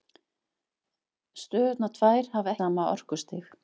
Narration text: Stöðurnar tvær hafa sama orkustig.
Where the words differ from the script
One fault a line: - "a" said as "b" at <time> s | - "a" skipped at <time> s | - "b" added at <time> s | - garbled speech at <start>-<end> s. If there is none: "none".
none